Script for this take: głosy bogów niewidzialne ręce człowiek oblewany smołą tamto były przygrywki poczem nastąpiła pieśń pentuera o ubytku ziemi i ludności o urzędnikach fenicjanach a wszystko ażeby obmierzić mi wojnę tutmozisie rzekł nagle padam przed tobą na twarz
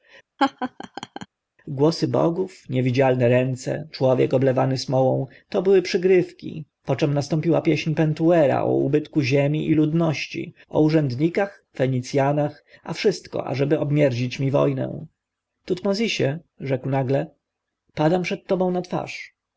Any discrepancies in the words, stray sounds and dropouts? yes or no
yes